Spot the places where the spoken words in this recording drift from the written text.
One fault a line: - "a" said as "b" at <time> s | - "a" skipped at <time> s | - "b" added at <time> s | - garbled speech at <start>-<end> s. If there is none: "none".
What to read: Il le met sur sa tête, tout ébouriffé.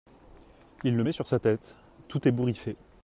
none